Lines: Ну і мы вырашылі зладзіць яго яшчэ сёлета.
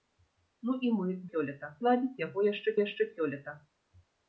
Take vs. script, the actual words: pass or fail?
fail